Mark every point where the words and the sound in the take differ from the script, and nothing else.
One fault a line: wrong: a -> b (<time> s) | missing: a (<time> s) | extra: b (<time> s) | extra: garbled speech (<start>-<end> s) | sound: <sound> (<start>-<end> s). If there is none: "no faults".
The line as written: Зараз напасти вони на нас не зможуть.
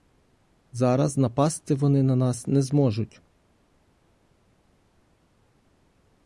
no faults